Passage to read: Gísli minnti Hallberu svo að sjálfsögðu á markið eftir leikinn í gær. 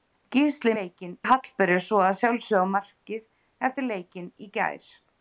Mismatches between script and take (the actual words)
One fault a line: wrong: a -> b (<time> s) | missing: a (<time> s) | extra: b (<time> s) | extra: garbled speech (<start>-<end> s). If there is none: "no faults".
wrong: minnti -> leikinn (0.8 s)